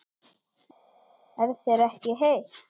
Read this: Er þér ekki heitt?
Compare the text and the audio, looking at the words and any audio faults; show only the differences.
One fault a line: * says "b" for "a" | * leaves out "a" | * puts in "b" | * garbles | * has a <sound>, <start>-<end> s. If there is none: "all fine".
all fine